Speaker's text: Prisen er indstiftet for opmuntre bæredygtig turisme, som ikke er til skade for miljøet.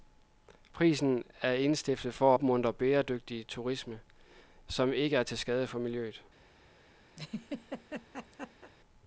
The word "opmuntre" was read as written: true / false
true